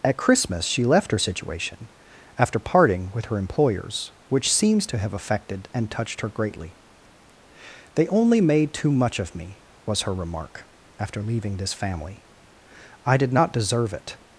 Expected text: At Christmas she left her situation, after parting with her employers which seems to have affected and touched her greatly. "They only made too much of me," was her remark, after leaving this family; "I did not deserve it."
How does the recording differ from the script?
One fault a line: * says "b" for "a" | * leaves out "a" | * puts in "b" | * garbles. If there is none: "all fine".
all fine